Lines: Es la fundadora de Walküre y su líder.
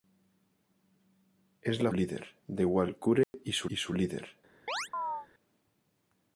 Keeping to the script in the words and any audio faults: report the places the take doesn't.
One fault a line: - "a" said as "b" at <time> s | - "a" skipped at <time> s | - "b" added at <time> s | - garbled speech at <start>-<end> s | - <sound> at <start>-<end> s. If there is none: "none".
- "fundadora" said as "líder" at 1.9 s
- dropout at 3.2-3.3 s
- "y su" added at 3.7 s
- chirp at 4.7-5.3 s